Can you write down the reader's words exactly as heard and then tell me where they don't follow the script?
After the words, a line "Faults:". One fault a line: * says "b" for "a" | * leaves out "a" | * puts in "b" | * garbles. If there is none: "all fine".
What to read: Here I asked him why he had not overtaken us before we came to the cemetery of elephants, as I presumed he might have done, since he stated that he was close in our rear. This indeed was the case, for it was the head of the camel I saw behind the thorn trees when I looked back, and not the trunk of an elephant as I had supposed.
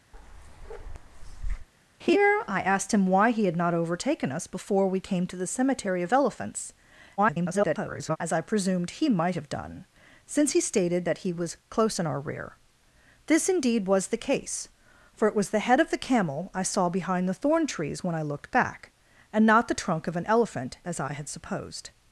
Here I asked him why he had not overtaken us before we came to the cemetery of elephants, [garbled] as I presumed he might have done, since he stated that he was close in our rear. This indeed was the case, for it was the head of the camel I saw behind the thorn trees when I looked back, and not the trunk of an elephant as I had supposed.
Faults:
* garbles